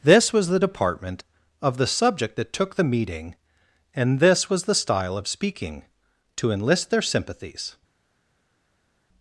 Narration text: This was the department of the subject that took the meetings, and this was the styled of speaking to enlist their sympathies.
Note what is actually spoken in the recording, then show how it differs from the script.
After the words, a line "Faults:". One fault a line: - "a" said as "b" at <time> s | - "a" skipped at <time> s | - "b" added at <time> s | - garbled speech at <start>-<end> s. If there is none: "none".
This was the department of the subject that took the meeting, and this was the style of speaking to enlist their sympathies.
Faults:
- "meetings" said as "meeting" at 2.8 s
- "styled" said as "style" at 4.8 s